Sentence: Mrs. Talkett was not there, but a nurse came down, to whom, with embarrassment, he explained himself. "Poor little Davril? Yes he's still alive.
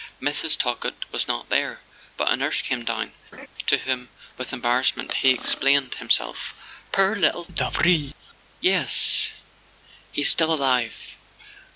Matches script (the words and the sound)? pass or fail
fail